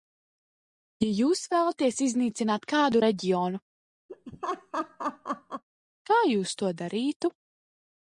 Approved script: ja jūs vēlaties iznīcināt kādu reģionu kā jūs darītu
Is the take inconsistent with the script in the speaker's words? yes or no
yes